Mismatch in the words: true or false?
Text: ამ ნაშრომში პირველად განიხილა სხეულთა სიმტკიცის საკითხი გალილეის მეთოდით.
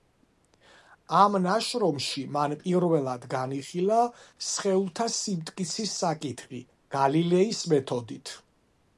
true